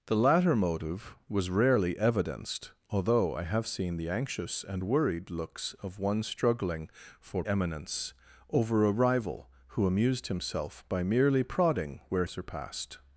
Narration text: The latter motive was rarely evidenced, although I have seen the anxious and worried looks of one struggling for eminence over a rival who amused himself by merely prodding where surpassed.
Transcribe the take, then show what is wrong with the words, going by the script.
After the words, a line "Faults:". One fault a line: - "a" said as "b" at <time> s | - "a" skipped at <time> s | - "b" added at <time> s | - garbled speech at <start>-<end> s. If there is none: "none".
The latter motive was rarely evidenced, although I have seen the anxious and worried looks of one struggling for eminence over a rival who amused himself by merely prodding where surpassed.
Faults:
none